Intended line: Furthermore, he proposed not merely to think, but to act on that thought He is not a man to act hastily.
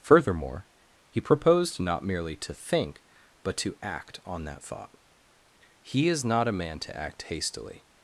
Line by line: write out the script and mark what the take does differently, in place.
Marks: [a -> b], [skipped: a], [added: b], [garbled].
Furthermore, he proposed not merely to think, but to act on that thought He is not a man to act hastily.